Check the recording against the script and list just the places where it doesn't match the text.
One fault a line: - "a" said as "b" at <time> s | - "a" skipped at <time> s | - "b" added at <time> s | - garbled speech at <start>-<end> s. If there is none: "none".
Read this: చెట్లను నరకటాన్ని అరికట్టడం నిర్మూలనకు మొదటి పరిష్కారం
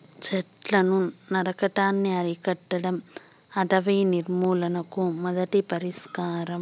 - "అటవీ" added at 3.5 s